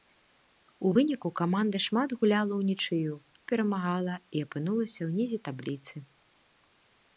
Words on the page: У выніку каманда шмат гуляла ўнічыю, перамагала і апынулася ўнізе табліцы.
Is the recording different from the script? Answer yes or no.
no